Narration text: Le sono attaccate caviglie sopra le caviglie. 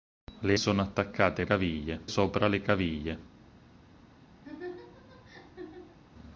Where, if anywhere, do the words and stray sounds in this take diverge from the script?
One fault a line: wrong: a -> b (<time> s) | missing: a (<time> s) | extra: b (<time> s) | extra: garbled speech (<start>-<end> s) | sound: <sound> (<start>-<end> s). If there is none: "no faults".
sound: laugh (4.4-6.0 s)